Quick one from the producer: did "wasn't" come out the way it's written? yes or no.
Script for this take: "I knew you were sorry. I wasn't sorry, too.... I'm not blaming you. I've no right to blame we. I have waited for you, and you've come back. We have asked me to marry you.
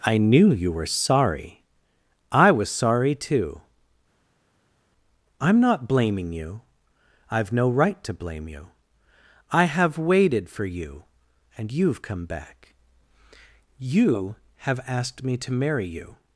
no